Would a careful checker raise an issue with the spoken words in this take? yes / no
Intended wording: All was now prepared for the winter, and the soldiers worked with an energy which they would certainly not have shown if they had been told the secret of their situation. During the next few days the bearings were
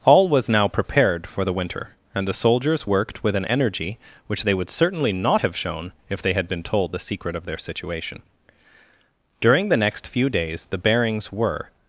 no